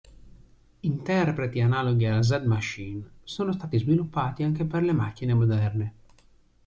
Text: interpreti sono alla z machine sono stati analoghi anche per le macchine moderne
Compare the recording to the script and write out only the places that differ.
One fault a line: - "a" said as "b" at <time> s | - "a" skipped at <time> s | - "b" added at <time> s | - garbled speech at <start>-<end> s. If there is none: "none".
- "sono" said as "analoghi" at 1.6 s
- "analoghi" said as "sviluppati" at 3.8 s